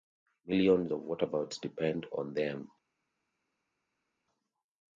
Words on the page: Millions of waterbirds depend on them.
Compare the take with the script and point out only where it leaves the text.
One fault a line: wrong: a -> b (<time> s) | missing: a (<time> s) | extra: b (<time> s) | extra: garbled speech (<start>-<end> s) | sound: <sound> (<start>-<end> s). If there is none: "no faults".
no faults